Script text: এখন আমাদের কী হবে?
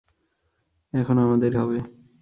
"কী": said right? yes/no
no